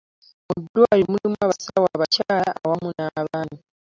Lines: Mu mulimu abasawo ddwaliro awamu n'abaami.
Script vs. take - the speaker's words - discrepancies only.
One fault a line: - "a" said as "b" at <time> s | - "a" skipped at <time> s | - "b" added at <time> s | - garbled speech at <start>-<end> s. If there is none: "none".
- "ddwaliro" added at 0.6 s
- "ddwaliro" said as "abakyala" at 1.9 s